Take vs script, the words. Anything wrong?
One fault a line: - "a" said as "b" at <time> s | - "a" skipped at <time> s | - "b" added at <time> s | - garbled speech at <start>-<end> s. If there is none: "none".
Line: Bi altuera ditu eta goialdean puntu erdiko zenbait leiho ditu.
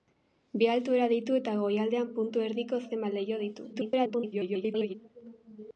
- garbled speech at 3.7-4.9 s